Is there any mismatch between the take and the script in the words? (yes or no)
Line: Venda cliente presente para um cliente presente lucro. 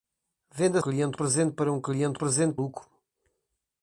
no